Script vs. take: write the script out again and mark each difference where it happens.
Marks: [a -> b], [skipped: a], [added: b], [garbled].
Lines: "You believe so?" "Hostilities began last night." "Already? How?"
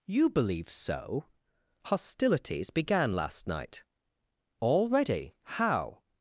"You believe so?" "Hostilities began last night." "Already? How?"